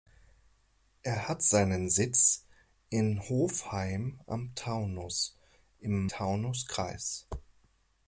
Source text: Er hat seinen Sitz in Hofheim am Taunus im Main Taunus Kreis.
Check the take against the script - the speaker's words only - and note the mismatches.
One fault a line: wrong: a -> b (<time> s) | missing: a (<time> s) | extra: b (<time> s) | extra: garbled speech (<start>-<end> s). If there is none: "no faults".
missing: Main (6.1 s)